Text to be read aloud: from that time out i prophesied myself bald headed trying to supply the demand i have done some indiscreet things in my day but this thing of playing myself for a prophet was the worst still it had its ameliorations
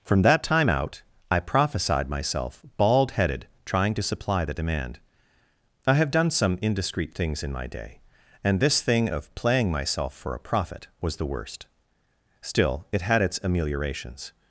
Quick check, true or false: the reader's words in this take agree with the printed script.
false